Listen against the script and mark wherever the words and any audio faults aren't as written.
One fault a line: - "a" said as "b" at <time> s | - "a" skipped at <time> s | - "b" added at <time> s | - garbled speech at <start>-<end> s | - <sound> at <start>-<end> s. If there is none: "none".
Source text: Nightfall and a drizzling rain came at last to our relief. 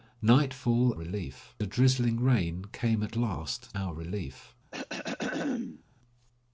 - "and" said as "relief" at 0.9 s
- "to" skipped at 3.7 s
- throat clearing at 4.7-5.8 s